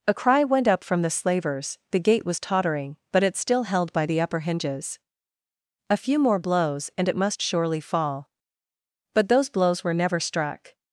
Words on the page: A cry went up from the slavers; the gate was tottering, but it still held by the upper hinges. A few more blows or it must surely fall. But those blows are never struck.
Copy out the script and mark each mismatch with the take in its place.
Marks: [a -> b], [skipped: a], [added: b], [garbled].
A cry went up from the slavers; the gate was tottering, but it still held by the upper hinges. A few more blows [or -> and] it must surely fall. But those blows [are -> were] never struck.